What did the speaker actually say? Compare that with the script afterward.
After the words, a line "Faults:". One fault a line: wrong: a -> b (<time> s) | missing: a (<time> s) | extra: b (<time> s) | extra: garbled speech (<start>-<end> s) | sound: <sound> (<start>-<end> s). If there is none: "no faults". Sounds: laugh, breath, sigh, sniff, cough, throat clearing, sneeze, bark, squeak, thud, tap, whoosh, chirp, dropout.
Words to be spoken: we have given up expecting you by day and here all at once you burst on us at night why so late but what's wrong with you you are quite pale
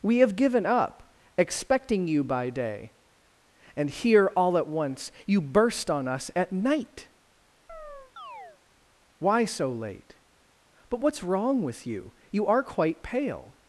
we have given up expecting you by day and here all at once you burst on us at night why so late but what's wrong with you you are quite pale
Faults:
sound: chirp (7.7-8.6 s)